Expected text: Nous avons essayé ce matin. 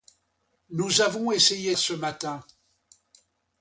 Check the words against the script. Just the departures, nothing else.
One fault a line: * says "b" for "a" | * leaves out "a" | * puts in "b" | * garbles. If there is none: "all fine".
all fine